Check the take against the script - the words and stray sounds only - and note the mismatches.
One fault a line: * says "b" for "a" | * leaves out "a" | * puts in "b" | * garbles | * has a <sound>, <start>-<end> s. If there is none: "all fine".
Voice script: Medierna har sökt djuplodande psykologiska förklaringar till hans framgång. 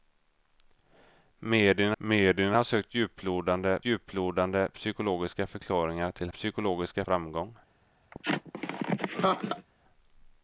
* puts in "medierna"
* puts in "djuplodande"
* says "psykologiska" for "hans"
* has a laugh, 8.1-9.7 s